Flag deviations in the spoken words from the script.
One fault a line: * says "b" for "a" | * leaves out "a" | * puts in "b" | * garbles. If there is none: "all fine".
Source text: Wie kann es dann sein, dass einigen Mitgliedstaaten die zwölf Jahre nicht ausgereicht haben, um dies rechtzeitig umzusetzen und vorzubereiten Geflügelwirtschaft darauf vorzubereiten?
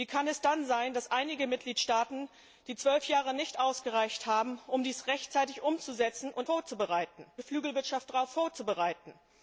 all fine